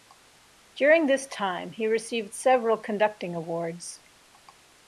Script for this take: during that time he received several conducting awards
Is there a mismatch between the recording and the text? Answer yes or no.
yes